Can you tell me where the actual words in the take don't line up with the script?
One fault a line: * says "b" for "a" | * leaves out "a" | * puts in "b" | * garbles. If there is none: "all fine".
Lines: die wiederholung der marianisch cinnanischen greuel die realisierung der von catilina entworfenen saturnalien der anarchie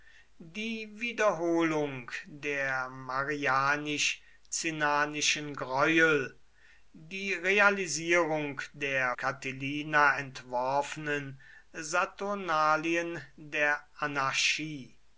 * leaves out "von"